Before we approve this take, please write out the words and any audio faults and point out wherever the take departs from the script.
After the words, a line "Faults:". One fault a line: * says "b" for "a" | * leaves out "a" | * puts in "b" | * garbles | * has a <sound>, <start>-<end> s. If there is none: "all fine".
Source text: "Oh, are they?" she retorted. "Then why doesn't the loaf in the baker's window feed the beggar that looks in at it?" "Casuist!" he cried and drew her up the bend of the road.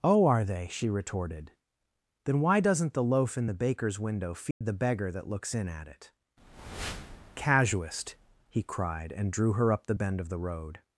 "Oh, are they?" she retorted. "Then why doesn't the loaf in the baker's window feed the beggar that looks in at it?" "Casuist!" he cried and drew her up the bend of the road.
Faults:
* has a dropout, 4.5-4.6 s